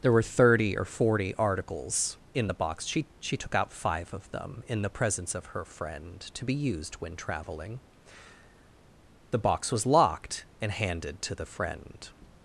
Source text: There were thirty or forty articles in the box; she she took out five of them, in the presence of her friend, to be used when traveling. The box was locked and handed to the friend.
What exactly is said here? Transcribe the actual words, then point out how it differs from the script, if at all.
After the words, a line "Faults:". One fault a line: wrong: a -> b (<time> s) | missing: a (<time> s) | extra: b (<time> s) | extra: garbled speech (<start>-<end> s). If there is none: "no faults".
There were thirty or forty articles in the box; she she took out five of them, in the presence of her friend, to be used when traveling. The box was locked and handed to the friend.
Faults:
no faults